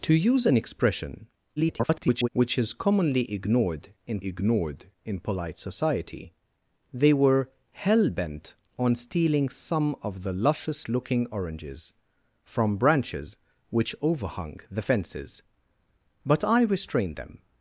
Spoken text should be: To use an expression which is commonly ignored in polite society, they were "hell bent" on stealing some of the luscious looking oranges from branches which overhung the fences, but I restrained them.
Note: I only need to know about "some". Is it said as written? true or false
true